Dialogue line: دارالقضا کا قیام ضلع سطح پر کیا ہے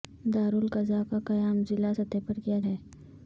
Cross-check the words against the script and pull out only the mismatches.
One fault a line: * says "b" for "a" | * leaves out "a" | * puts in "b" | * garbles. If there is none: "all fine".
all fine